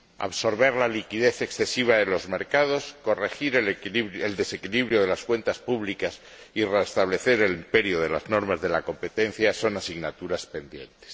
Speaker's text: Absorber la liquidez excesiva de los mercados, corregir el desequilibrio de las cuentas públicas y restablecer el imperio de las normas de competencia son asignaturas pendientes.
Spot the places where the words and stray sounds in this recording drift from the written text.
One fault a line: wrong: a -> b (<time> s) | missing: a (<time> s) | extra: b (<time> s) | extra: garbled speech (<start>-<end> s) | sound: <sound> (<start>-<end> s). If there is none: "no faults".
extra: la (8.7 s)